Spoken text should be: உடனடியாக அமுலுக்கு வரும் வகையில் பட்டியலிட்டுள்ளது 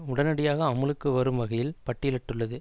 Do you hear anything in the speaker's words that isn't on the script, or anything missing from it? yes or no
no